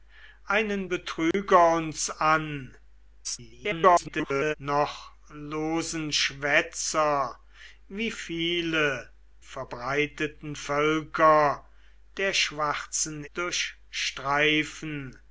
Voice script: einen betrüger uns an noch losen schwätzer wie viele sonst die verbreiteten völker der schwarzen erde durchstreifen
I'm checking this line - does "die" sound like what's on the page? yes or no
no